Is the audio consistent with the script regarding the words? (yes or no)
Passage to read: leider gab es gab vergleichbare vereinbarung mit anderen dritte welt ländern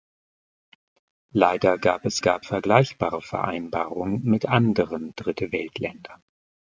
yes